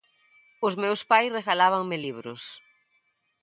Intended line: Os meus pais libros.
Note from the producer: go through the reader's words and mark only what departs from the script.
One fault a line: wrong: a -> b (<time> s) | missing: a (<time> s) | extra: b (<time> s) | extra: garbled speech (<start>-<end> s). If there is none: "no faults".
extra: regalábanme (1.4 s)